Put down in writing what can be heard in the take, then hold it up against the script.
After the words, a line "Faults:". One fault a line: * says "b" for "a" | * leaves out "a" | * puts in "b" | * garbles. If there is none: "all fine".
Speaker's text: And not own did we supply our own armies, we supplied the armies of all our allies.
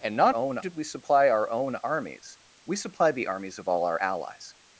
And not own did we supply our own armies, we supplied the armies of all our allies.
Faults:
all fine